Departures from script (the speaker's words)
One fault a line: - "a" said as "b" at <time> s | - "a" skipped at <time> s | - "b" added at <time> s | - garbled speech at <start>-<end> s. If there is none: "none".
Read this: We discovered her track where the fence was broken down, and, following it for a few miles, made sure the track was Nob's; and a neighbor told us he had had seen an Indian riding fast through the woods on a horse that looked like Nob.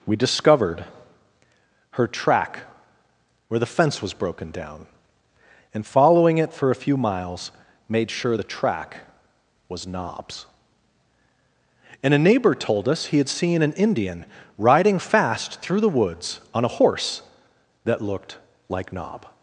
- "had" skipped at 13.3 s